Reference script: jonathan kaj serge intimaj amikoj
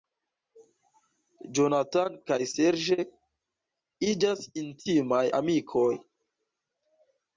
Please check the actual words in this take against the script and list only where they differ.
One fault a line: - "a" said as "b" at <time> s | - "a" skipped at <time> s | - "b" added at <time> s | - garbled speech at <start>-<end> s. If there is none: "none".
- "iĝas" added at 4.1 s